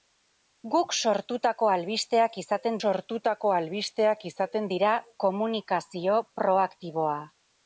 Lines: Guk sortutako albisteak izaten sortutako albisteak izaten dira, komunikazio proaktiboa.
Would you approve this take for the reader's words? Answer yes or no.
yes